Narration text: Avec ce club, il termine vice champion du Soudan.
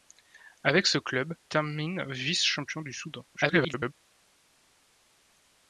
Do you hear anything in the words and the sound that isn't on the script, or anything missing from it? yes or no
yes